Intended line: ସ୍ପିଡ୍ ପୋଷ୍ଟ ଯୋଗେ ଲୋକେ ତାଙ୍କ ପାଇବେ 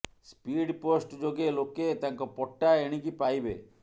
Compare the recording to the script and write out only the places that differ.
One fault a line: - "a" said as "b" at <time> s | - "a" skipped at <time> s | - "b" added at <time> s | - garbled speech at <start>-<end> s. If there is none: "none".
- "ପଟ୍ଟା ଏଣିକି" added at 2.4 s